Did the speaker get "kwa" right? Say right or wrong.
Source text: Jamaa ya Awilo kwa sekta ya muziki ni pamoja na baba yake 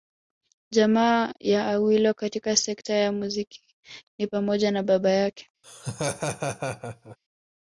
wrong